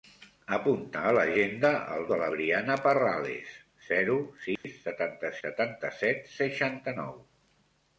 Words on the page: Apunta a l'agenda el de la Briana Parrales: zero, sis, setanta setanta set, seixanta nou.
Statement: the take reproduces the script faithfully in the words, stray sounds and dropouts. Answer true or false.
false